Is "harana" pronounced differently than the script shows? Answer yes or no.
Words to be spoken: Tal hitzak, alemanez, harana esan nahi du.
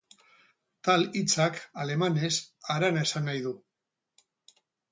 no